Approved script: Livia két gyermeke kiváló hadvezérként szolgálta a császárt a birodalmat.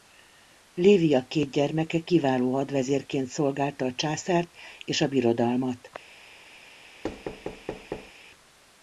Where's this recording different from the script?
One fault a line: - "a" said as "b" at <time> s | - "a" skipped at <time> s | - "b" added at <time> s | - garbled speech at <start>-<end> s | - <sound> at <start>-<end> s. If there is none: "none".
- "és" added at 4.8 s
- thud at 7.0-8.1 s